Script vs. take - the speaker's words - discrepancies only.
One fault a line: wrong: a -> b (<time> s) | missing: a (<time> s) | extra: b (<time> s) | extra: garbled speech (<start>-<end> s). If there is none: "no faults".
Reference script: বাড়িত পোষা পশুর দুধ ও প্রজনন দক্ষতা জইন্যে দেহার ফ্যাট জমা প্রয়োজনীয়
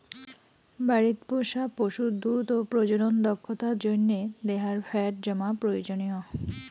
no faults